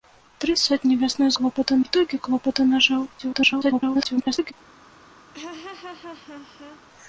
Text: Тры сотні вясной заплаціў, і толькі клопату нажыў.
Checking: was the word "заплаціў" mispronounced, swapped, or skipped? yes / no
yes